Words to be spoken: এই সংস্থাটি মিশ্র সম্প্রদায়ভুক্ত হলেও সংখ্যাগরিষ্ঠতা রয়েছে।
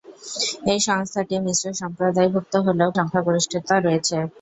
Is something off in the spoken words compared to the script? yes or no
no